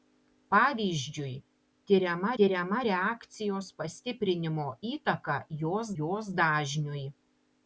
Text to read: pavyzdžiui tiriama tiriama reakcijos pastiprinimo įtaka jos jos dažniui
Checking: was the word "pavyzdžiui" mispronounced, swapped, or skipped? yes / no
no